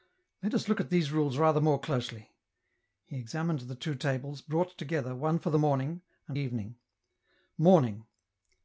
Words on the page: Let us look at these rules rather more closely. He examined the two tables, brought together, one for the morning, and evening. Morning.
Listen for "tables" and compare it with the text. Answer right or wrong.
right